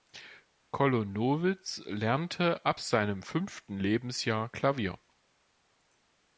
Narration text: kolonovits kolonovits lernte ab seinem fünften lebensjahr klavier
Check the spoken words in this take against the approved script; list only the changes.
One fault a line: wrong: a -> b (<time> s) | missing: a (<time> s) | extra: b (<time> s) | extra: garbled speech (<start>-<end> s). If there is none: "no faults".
missing: kolonovits (1.8 s)